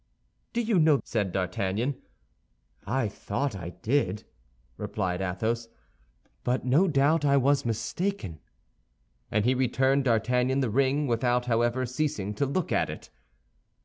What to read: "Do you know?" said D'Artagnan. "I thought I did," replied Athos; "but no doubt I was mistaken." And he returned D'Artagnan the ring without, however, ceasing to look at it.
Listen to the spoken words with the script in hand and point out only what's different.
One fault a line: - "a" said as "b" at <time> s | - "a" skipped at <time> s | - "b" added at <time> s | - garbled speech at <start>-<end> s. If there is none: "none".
none